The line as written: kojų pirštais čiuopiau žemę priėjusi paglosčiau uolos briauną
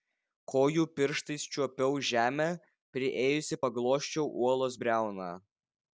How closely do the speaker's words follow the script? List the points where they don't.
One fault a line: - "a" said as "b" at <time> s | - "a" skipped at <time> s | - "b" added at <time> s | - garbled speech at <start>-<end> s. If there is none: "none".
none